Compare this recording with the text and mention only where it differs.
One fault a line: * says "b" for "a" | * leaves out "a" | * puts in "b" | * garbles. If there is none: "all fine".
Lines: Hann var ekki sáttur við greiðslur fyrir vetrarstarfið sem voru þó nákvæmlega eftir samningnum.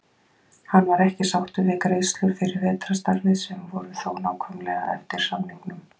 all fine